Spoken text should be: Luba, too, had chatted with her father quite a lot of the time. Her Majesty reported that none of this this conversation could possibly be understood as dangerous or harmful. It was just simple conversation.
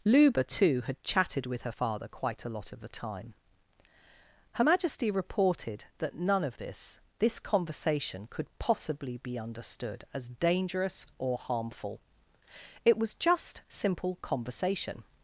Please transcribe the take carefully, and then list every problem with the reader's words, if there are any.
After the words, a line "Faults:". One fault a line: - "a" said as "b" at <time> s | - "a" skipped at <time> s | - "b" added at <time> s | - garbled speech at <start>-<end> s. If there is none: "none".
Luba, too, had chatted with her father quite a lot of the time. Her Majesty reported that none of this this conversation could possibly be understood as dangerous or harmful. It was just simple conversation.
Faults:
none